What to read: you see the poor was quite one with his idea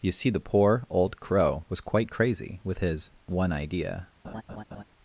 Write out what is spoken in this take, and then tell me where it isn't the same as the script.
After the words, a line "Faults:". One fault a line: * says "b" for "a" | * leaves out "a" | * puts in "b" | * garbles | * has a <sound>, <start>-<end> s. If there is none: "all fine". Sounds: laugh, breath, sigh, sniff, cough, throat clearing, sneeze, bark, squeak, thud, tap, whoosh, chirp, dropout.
you see the poor old crow was quite crazy with his one idea
Faults:
* puts in "old crow"
* says "crazy" for "one"
* puts in "one"
* has a laugh, 4.2-4.8 s